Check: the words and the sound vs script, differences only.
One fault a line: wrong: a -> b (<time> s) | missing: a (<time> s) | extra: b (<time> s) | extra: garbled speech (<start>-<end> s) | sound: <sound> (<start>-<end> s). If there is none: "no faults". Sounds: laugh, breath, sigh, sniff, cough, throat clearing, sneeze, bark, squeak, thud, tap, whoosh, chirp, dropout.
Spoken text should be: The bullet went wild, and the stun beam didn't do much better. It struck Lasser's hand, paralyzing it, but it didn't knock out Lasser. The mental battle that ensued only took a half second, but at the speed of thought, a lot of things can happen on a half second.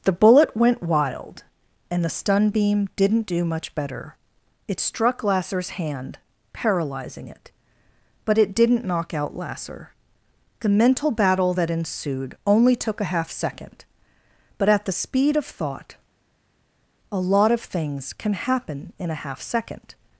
wrong: on -> in (19.0 s)